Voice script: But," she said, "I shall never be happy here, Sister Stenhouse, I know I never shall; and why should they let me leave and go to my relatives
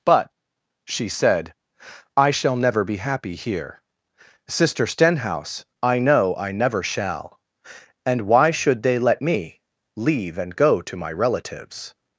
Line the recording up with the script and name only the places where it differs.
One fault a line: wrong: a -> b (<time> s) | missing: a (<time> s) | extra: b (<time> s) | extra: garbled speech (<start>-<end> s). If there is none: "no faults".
no faults